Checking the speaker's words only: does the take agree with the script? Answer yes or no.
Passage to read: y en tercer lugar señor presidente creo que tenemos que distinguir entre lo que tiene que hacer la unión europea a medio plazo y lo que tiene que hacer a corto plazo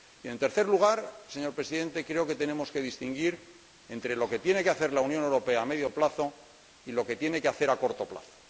yes